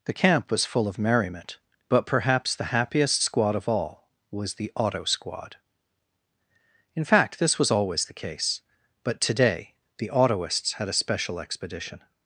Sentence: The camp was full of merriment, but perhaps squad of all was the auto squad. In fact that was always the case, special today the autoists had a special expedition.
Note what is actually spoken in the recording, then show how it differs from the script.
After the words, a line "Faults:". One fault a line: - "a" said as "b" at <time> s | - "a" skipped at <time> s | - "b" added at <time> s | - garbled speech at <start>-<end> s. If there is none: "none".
The camp was full of merriment, but perhaps the happiest squad of all was the auto squad. In fact this was always the case, but today the autoists had a special expedition.
Faults:
- "the happiest" added at 2.5 s
- "that" said as "this" at 7.4 s
- "special" said as "but" at 9.0 s